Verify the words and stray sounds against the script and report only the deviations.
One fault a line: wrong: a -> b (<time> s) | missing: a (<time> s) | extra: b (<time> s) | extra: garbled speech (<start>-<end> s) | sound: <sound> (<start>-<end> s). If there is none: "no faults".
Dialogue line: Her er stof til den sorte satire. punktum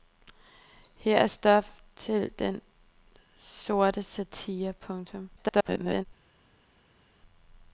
extra: garbled speech (5.4-6.1 s)